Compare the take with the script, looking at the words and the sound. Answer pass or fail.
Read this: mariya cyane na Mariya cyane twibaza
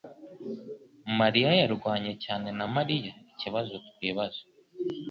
fail